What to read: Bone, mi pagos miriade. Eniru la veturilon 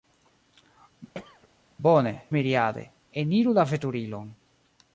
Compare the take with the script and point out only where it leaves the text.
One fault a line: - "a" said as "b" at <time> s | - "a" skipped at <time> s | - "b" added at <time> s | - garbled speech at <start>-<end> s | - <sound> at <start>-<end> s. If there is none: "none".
- throat clearing at 1.1-1.5 s
- "mi pagos" skipped at 2.1 s